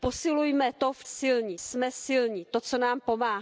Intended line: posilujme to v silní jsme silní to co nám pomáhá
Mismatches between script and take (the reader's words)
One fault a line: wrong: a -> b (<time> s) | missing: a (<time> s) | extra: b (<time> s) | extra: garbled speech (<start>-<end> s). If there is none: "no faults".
no faults